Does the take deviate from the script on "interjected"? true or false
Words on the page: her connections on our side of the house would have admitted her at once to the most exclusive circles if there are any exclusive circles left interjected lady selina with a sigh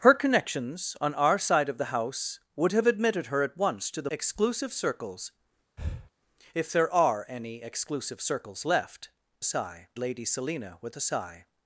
true